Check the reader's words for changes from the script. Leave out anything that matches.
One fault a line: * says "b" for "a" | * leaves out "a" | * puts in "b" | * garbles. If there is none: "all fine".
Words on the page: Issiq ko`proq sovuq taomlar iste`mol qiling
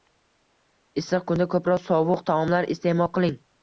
* puts in "kunda"